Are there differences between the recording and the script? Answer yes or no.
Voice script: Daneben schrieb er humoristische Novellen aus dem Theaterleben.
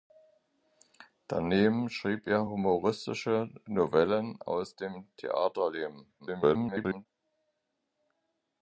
yes